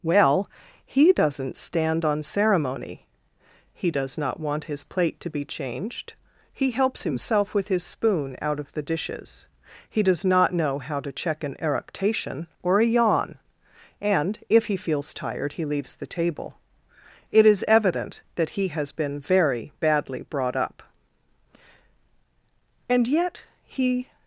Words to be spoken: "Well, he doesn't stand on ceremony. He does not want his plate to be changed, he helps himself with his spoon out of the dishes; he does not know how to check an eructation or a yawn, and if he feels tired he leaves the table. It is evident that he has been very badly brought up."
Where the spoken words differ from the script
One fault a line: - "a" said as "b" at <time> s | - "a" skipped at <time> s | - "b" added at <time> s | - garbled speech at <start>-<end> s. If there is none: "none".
- "And yet he" added at 22.9 s